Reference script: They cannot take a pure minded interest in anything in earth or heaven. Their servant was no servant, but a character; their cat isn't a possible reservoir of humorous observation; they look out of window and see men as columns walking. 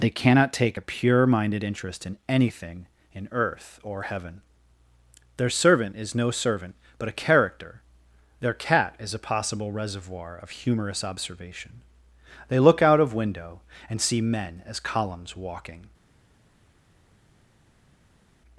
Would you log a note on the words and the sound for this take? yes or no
yes